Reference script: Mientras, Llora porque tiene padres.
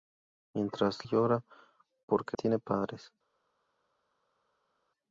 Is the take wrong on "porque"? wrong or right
right